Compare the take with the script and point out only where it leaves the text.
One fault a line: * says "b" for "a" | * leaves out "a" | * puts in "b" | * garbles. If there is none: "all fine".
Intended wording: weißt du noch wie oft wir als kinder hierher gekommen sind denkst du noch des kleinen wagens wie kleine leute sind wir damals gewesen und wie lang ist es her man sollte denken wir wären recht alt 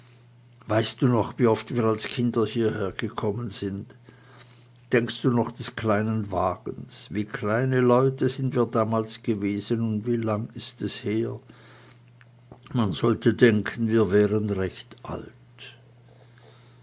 all fine